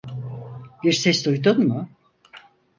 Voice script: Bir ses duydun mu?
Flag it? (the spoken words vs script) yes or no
no